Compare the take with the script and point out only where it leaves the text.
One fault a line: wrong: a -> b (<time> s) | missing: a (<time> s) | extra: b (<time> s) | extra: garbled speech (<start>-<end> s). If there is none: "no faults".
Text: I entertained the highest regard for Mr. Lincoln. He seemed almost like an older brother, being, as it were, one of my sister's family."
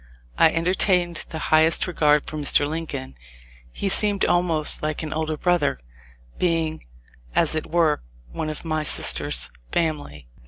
no faults